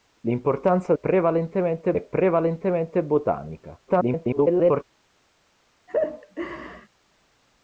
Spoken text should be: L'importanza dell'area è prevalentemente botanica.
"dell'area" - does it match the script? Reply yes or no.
no